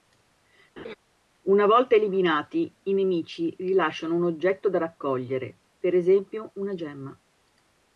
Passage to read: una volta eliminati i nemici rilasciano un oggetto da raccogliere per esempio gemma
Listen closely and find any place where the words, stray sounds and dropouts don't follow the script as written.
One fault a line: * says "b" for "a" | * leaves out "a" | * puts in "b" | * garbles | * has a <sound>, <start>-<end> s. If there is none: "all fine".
* has a laugh, 0.8-0.9 s
* puts in "una"